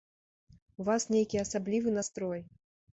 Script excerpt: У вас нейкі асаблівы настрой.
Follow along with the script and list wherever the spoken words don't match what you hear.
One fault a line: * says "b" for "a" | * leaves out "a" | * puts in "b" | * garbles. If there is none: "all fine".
all fine